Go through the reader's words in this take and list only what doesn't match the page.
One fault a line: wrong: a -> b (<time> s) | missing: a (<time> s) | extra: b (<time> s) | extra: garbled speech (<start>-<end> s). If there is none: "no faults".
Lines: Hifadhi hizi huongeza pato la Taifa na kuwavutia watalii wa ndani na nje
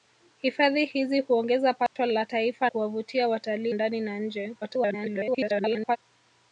missing: na (2.7 s)
missing: wa (3.7 s)
extra: garbled speech (4.6-6.0 s)